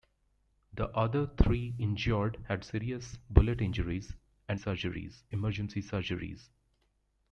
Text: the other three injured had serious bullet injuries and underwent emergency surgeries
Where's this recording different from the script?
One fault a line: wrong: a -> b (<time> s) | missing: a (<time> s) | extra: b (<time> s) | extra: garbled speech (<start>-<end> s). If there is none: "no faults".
wrong: underwent -> surgeries (4.6 s)